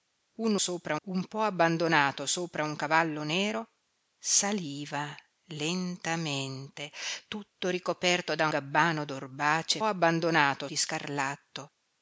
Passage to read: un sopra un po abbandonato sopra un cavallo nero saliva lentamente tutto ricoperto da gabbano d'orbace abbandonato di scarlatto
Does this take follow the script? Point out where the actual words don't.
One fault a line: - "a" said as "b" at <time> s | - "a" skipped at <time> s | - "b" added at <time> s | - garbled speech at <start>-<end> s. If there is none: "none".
none